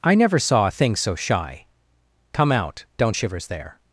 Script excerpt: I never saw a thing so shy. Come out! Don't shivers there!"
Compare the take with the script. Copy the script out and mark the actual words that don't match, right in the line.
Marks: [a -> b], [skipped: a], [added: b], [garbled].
I never saw a thing so shy. Come out! Don't shivers there!"